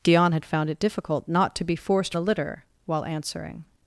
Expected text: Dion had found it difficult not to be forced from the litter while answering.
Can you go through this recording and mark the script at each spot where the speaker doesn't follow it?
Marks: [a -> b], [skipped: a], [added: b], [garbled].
Dion had found it difficult not to be forced [skipped: from] the litter while answering.